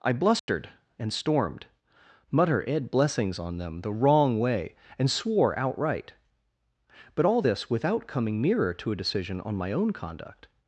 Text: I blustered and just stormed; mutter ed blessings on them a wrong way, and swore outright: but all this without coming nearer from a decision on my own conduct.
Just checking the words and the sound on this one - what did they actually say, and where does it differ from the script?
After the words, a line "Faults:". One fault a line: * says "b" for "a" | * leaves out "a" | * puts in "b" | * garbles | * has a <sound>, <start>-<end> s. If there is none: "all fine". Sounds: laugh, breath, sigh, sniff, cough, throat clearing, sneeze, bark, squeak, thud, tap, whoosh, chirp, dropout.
I blustered and stormed; mutter ed blessings on them the wrong way, and swore outright: but all this without coming nearer to a decision on my own conduct.
Faults:
* has a dropout, 0.4-0.5 s
* leaves out "just"
* says "the" for "a"
* says "to" for "from"